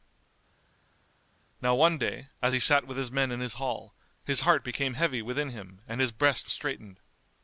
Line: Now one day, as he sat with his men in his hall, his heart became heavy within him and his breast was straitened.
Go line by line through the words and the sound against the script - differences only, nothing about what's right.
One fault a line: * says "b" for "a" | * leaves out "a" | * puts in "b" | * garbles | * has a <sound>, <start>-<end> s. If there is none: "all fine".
* leaves out "was"